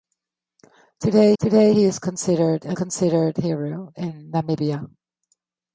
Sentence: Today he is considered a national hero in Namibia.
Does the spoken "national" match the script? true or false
false